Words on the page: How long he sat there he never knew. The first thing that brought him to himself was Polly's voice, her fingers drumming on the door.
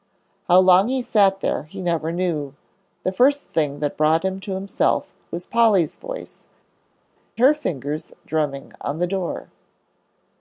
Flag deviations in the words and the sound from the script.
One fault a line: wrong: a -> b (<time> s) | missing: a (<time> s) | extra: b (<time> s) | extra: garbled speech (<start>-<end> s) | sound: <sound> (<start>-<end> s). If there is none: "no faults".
no faults